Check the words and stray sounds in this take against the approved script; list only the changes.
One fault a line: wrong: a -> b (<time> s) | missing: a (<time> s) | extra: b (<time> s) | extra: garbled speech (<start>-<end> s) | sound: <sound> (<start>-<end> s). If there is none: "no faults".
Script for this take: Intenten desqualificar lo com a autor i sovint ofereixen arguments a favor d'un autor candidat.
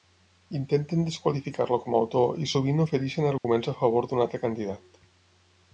sound: dropout (3.4-3.4 s)
wrong: autor -> altre (4.3 s)